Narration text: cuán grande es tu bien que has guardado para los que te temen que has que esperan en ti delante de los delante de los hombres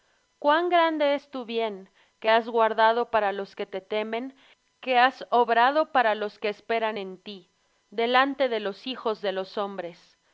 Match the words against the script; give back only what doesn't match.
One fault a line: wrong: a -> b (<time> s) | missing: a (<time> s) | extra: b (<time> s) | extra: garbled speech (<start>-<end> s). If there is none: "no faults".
extra: obrado para los (5.3 s)
wrong: delante -> hijos (8.9 s)